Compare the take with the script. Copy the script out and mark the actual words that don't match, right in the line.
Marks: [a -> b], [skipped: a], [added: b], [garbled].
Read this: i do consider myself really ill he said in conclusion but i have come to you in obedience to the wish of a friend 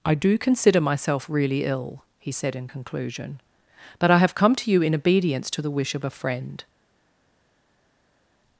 i do consider myself really ill he said in conclusion but i have come to you in obedience to the wish of a friend